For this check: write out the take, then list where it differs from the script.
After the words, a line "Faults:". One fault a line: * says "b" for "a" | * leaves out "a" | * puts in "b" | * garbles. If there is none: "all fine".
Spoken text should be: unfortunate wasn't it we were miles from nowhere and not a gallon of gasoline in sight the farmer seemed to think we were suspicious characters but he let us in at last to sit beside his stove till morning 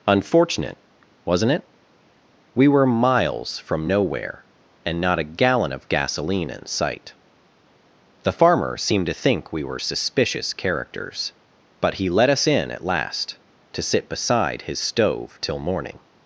unfortunate wasn't it we were miles from nowhere and not a gallon of gasoline in sight the farmer seemed to think we were suspicious characters but he let us in at last to sit beside his stove till morning
Faults:
all fine